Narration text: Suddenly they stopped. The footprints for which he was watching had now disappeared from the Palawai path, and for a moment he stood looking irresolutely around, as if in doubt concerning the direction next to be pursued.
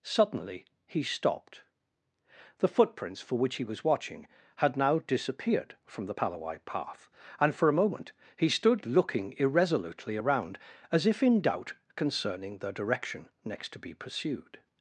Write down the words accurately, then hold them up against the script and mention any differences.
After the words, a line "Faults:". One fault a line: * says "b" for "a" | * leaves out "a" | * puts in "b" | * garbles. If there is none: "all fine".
Suddenly he stopped. The footprints for which he was watching had now disappeared from the Palawai path, and for a moment he stood looking irresolutely around, as if in doubt concerning the direction next to be pursued.
Faults:
* says "he" for "they"